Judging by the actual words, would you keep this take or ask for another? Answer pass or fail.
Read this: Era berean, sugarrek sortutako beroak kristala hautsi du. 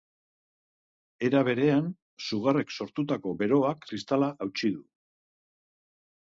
pass